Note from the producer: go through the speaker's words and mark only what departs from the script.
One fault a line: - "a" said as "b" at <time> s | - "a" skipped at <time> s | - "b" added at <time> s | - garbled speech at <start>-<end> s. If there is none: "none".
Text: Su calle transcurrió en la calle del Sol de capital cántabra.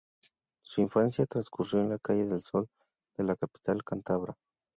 - "calle" said as "infancia" at 0.8 s
- "la" added at 3.2 s